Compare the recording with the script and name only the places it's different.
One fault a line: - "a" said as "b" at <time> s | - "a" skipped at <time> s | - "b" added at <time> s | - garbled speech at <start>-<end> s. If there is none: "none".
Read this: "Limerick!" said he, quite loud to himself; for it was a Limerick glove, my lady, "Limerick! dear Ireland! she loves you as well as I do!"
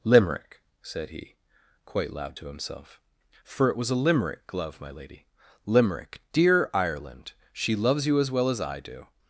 none